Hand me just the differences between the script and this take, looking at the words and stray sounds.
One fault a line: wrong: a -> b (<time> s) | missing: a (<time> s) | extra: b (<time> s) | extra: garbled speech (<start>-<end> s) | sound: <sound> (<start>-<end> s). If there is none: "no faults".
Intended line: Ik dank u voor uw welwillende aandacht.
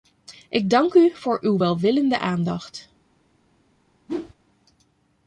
sound: whoosh (4.1-4.3 s)